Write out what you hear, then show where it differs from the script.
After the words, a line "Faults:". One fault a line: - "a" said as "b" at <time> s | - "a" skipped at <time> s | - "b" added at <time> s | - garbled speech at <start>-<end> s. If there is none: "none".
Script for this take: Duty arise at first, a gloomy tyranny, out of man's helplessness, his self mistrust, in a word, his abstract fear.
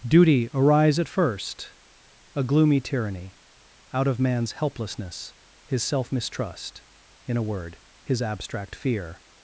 Duty arise at first, a gloomy tyranny, out of man's helplessness, his self mistrust, in a word, his abstract fear.
Faults:
none